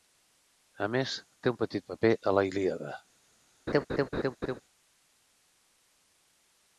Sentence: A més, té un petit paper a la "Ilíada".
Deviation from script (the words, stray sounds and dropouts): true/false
true